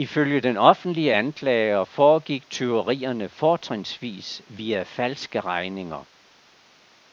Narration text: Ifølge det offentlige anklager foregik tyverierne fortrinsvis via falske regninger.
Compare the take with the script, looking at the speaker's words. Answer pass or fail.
fail